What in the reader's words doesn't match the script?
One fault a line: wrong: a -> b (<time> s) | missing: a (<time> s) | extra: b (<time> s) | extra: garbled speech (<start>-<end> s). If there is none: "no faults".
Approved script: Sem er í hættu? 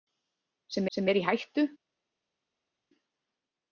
extra: sem (1.0 s)